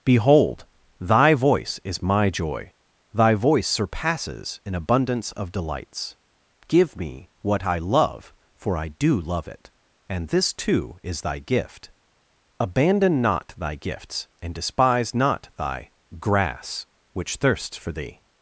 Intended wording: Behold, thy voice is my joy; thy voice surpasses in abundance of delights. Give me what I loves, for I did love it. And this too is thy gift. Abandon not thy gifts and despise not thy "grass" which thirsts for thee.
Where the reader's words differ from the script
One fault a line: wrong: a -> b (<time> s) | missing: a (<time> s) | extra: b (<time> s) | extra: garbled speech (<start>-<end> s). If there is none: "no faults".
wrong: loves -> love (7.8 s)
wrong: did -> do (8.9 s)